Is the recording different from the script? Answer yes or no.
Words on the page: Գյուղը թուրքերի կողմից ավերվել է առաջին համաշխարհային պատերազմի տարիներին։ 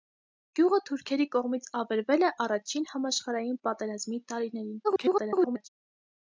yes